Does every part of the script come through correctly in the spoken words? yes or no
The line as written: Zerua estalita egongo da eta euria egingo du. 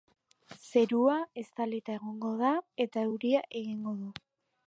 yes